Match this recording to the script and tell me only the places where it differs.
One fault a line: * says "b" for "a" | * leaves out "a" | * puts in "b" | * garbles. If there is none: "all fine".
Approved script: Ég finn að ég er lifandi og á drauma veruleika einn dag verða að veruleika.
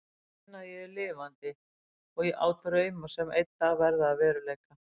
* says "sem" for "veruleika"